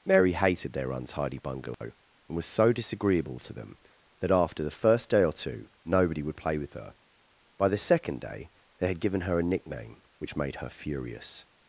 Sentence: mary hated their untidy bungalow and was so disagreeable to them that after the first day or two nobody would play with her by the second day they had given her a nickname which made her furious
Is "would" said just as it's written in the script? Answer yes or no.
yes